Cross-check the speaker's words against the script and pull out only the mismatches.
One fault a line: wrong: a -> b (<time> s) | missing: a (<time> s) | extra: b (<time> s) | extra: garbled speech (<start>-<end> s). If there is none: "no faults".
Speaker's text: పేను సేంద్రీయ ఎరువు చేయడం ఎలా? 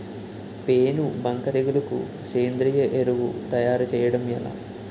extra: బంక తెగులుకు (1.2 s)
extra: తయారు (3.5 s)